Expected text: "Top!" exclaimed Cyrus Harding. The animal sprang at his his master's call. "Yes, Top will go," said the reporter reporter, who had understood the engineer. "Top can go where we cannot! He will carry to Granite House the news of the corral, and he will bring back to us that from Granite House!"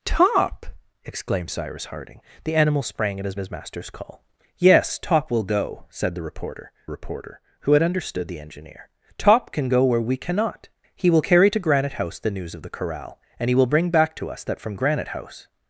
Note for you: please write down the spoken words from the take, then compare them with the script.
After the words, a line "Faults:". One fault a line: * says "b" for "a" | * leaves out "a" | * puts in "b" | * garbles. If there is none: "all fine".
"Top!" exclaimed Cyrus Harding. The animal sprang at his his master's call. "Yes, Top will go," said the reporter reporter, who had understood the engineer. "Top can go where we cannot! He will carry to Granite House the news of the corral, and he will bring back to us that from Granite House!"
Faults:
all fine